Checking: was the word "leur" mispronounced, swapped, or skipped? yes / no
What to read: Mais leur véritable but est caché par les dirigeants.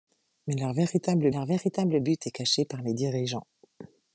no